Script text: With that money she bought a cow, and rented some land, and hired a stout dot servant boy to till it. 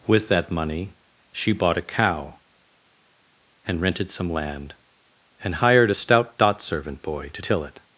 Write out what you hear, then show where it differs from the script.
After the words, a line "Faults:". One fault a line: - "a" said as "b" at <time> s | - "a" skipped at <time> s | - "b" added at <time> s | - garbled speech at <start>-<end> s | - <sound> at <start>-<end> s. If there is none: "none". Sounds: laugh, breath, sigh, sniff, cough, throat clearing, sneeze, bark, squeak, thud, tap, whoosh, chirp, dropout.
With that money she bought a cow, and rented some land, and hired a stout dot servant boy to till it.
Faults:
none